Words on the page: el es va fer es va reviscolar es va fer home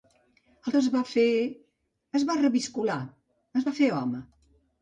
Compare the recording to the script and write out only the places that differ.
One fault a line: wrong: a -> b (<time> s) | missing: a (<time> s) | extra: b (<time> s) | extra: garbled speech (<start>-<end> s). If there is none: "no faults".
no faults